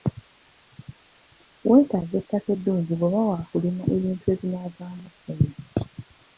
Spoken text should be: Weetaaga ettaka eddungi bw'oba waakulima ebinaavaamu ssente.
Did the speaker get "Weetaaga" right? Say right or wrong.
right